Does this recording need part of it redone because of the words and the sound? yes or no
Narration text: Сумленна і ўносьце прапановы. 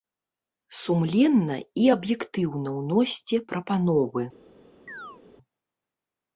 yes